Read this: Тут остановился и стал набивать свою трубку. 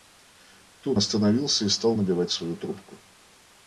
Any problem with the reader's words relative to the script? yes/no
no